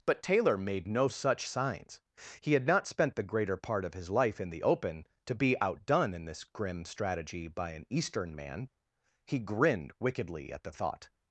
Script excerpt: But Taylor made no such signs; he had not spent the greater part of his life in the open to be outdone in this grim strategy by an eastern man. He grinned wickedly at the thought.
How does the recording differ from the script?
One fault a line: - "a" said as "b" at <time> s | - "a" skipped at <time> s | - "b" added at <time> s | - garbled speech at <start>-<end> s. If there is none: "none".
none